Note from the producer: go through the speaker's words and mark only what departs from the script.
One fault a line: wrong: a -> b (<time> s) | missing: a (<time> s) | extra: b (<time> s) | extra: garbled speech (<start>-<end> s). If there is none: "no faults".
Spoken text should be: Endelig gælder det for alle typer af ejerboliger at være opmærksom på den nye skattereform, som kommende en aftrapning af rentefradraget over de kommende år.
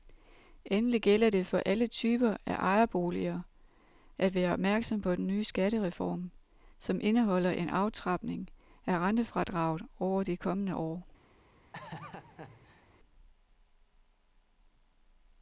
wrong: kommende -> indeholder (7.0 s)